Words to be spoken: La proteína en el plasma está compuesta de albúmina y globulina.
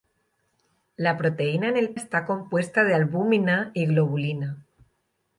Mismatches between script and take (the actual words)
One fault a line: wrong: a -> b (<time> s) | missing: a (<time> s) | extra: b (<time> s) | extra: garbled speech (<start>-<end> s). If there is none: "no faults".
missing: plasma (1.9 s)